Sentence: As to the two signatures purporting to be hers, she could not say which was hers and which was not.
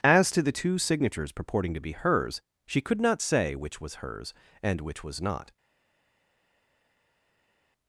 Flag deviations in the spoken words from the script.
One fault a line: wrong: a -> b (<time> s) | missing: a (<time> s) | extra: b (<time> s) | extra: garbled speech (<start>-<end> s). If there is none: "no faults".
no faults